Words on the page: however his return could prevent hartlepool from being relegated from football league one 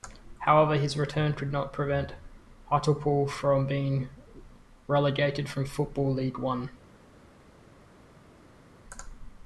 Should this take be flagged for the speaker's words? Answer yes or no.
yes